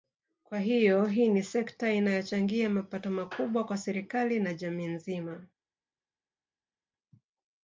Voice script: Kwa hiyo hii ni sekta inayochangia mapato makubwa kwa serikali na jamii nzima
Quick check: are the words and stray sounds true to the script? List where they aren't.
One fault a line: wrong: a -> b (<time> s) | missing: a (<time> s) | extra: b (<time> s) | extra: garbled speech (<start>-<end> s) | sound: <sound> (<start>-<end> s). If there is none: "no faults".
no faults